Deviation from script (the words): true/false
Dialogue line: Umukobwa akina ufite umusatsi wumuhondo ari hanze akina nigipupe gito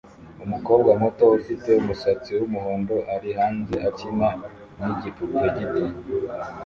true